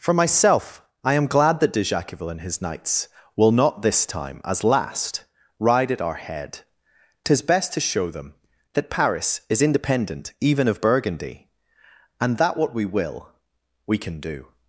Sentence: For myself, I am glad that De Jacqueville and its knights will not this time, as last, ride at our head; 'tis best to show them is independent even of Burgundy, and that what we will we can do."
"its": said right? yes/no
no